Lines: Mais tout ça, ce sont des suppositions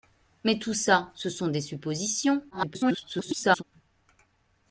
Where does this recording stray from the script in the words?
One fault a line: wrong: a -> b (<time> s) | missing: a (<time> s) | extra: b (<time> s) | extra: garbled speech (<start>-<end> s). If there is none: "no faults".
extra: garbled speech (2.5-3.6 s)